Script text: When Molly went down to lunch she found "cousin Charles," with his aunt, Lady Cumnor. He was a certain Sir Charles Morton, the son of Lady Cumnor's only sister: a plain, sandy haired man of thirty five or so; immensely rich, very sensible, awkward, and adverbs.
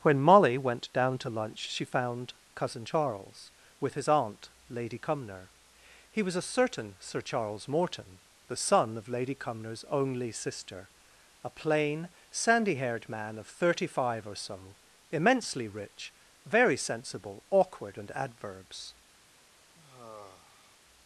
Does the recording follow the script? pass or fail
pass